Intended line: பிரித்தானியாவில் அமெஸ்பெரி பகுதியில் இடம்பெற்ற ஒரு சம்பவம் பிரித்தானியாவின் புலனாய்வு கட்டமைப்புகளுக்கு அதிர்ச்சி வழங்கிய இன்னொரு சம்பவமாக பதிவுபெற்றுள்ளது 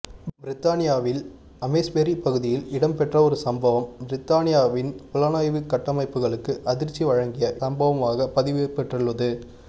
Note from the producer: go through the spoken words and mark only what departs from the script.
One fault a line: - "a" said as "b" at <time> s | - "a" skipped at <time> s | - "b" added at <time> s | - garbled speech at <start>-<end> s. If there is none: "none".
- "இன்னொரு" skipped at 7.5 s